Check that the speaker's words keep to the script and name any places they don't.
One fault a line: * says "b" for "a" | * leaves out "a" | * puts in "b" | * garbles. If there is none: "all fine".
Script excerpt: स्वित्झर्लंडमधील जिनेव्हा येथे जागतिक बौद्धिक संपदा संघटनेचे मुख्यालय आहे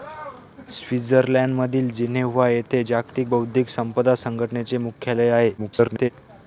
* garbles